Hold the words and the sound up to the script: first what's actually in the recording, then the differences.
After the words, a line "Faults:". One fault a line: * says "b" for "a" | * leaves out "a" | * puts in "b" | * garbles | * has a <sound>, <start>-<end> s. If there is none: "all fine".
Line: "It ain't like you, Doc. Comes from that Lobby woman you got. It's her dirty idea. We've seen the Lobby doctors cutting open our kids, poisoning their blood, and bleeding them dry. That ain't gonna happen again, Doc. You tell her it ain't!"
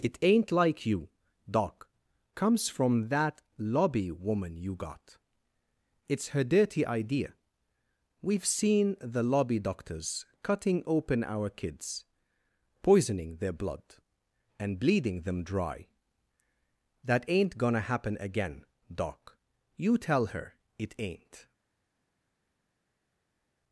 "It ain't like you, Doc. Comes from that Lobby woman you got. It's her dirty idea. We've seen the Lobby doctors cutting open our kids, poisoning their blood, and bleeding them dry. That ain't gonna happen again, Doc. You tell her it ain't!"
Faults:
all fine